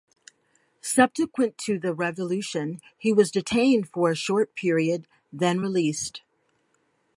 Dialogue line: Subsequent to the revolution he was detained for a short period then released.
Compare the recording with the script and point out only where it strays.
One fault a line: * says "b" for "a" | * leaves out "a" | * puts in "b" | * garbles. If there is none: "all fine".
all fine